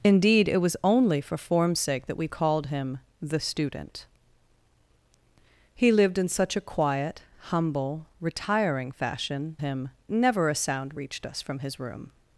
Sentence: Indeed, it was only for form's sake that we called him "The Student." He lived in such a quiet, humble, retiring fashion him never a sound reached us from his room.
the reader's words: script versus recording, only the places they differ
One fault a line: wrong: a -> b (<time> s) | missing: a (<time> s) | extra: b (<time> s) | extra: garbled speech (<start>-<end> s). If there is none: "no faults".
no faults